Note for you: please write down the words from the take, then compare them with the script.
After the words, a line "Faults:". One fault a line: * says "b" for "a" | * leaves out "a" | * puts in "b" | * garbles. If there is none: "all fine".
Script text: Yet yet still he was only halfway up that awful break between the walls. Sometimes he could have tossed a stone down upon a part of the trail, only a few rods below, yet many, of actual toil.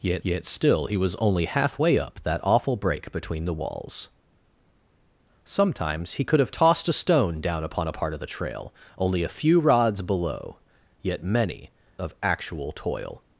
Yet yet still he was only halfway up that awful break between the walls. Sometimes he could have tossed a stone down upon a part of the trail, only a few rods below, yet many, of actual toil.
Faults:
all fine